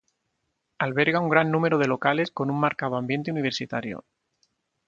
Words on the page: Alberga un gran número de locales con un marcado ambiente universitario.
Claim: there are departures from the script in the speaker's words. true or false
false